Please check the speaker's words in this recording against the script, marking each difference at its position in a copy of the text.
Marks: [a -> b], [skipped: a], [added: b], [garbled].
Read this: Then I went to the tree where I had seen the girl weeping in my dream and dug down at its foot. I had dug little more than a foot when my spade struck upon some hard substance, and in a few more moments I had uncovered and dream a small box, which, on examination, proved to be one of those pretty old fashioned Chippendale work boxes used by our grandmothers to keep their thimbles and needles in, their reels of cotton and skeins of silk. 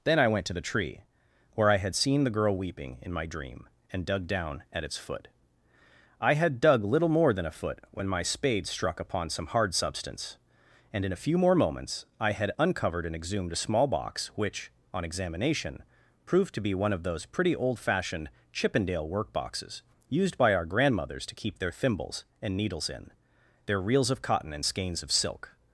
Then I went to the tree where I had seen the girl weeping in my dream and dug down at its foot. I had dug little more than a foot when my spade struck upon some hard substance, and in a few more moments I had uncovered and [dream -> exhumed] a small box, which, on examination, proved to be one of those pretty old fashioned Chippendale work boxes used by our grandmothers to keep their thimbles and needles in, their reels of cotton and skeins of silk.